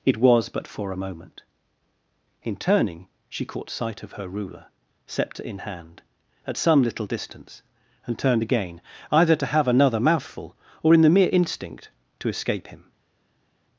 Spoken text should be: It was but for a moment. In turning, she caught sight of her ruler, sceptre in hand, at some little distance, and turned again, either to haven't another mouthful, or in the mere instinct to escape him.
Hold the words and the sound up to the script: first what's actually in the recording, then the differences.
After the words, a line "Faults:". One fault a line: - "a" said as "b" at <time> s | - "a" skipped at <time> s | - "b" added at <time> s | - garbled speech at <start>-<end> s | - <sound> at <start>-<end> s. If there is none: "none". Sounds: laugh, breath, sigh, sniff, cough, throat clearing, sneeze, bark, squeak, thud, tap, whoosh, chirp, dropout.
It was but for a moment. In turning, she caught sight of her ruler, sceptre in hand, at some little distance, and turned again, either to have another mouthful, or in the mere instinct to escape him.
Faults:
- "haven't" said as "have" at 9.5 s